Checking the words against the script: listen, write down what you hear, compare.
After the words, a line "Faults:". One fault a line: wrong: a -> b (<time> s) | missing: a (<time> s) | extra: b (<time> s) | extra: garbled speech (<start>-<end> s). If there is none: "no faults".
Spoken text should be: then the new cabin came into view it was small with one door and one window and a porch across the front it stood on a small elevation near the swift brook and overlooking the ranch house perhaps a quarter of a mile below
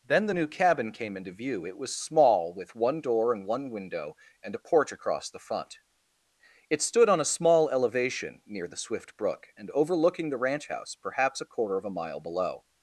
then the new cabin came into view it was small with one door and one window and a porch across the front it stood on a small elevation near the swift brook and overlooking the ranch house perhaps a quarter of a mile below
Faults:
no faults